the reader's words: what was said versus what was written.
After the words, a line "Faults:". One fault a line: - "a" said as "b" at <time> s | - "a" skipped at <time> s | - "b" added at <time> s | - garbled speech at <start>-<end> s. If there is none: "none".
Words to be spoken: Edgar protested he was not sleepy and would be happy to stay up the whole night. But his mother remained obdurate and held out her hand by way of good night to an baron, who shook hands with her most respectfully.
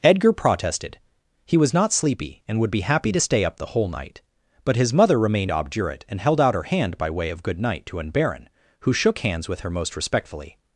Edgar protested he was not sleepy and would be happy to stay up the whole night. But his mother remained obdurate and held out her hand by way of good night to an baron, who shook hands with her most respectfully.
Faults:
none